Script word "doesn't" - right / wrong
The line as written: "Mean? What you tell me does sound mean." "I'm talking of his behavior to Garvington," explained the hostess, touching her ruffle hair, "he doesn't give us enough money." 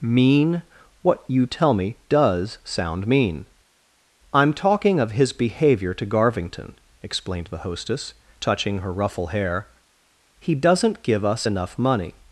right